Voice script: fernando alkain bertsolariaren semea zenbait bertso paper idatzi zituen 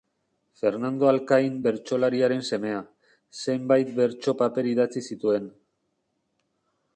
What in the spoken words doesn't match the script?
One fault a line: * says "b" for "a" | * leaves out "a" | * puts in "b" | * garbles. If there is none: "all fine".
all fine